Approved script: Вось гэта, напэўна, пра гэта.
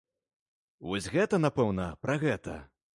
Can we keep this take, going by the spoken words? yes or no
yes